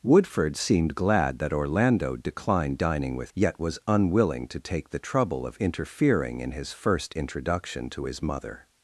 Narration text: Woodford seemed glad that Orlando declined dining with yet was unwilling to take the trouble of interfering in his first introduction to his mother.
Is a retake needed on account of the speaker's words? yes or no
no